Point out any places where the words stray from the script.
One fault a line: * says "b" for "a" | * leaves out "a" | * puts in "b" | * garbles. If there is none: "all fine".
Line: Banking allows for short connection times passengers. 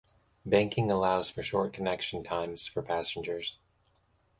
* puts in "for"